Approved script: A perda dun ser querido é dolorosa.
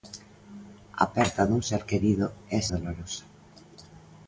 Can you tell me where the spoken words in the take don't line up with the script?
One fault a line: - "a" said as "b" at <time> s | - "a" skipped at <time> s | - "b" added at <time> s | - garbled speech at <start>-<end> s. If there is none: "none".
none